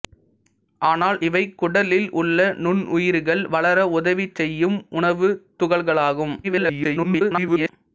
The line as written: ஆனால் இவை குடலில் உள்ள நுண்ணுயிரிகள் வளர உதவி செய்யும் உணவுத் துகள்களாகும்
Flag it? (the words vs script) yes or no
yes